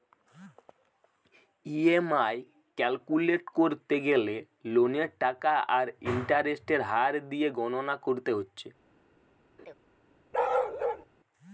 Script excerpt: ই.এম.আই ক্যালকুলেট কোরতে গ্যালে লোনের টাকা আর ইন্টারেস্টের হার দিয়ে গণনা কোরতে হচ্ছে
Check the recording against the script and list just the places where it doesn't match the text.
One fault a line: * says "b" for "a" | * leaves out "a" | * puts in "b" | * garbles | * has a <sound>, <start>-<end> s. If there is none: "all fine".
* has a laugh, 9.6-9.7 s
* has a bark, 10.3-11.1 s